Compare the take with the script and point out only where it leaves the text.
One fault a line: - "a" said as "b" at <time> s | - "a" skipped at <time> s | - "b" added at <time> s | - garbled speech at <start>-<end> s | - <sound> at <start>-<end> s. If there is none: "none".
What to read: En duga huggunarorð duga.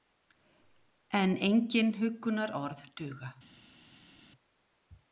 - "duga" said as "engin" at 1.5 s